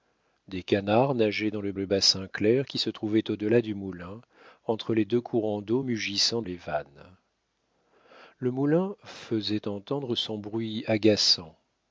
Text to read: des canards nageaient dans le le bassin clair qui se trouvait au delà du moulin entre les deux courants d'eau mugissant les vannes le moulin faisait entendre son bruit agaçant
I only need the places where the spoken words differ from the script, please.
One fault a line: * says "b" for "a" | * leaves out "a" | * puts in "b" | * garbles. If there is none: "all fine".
all fine